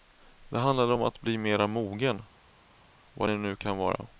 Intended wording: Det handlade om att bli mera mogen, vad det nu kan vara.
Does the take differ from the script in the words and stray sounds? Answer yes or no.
no